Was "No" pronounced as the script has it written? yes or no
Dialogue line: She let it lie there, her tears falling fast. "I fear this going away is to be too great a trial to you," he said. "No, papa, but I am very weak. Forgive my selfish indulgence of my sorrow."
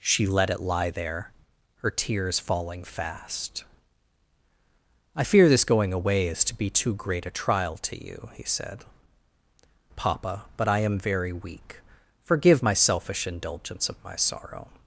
no